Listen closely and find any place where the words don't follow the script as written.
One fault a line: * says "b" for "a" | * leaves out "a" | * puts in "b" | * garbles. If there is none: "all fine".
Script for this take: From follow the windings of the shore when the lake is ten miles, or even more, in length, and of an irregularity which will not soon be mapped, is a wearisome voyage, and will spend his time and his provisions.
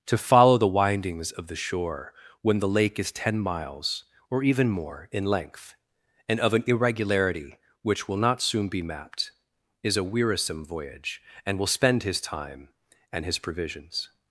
* says "To" for "From"